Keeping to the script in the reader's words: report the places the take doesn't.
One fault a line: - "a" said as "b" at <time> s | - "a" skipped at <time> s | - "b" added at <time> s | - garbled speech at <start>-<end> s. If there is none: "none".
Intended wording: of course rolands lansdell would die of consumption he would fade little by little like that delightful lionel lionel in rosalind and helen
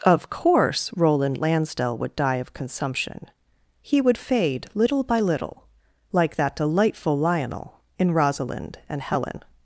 - "rolands" said as "roland" at 0.9 s
- "lionel" skipped at 7.8 s